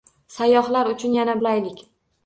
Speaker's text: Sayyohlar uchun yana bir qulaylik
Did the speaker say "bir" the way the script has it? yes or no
no